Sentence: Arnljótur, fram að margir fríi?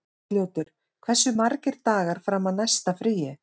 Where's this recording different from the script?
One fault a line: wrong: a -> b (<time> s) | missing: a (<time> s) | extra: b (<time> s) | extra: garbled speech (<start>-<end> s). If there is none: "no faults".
extra: hversu margir dagar (1.1 s)
wrong: margir -> næsta (2.6 s)